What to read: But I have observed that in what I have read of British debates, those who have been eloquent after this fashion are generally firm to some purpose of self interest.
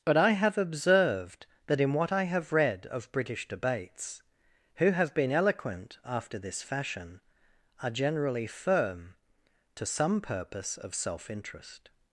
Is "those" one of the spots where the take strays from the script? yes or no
yes